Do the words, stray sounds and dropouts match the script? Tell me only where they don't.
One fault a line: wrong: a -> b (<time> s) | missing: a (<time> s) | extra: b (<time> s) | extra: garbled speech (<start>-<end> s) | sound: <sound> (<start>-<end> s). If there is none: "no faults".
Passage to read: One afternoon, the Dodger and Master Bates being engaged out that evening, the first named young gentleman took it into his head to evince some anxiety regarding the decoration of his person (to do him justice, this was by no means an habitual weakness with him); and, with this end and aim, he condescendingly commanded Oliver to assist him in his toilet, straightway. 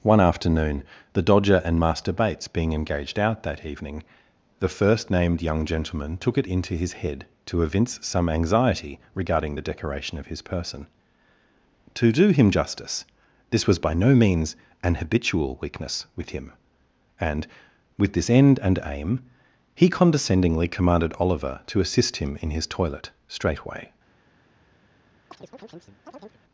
sound: chirp (25.3-26.4 s)